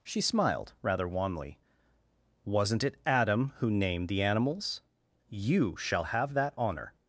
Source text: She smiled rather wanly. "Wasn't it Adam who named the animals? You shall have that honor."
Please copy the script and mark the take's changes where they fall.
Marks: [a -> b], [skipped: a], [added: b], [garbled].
She smiled rather wanly. "Wasn't it Adam who named the animals? You shall have that honor."